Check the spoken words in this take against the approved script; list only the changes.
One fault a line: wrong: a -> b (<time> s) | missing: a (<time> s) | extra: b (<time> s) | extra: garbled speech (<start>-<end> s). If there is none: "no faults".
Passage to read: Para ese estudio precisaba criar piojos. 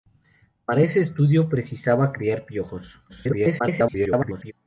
extra: garbled speech (3.1-4.5 s)